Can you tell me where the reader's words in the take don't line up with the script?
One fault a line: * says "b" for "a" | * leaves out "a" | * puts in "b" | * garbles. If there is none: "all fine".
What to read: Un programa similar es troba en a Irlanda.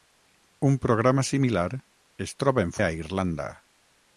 all fine